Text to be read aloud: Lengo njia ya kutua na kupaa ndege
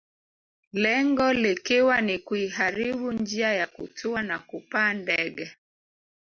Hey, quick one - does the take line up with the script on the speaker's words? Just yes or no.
no